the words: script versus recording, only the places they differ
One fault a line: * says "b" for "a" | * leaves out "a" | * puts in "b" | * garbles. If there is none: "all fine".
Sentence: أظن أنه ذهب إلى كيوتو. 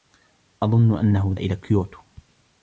* leaves out "ذهب"